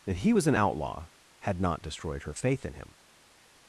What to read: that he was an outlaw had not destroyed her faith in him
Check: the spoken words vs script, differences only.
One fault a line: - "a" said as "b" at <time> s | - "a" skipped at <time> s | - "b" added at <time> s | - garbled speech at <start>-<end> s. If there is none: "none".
none